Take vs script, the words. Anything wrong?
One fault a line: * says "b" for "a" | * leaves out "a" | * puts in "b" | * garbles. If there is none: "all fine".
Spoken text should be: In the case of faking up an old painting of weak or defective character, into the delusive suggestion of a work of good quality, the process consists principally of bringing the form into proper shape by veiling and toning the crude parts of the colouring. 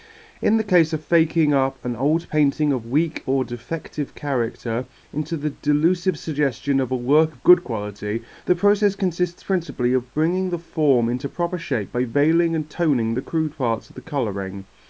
all fine